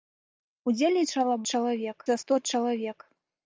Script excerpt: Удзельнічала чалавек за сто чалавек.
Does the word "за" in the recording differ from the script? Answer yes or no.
no